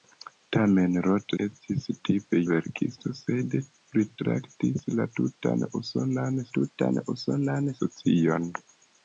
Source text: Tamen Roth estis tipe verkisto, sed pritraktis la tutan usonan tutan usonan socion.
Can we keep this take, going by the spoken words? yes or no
yes